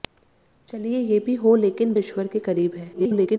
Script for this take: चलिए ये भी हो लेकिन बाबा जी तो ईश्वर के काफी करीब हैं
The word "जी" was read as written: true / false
false